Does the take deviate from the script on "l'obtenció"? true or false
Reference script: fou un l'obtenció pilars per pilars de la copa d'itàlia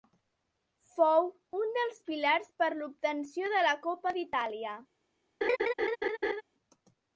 true